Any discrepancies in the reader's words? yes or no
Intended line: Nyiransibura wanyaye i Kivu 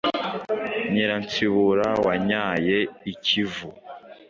no